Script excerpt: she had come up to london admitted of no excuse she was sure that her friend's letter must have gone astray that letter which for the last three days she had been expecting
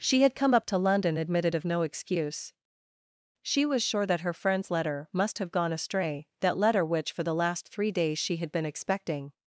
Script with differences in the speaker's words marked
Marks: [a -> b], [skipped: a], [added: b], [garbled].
she had come up to london admitted of no excuse she was sure that her friend's letter must have gone astray that letter which for the last three days she had been expecting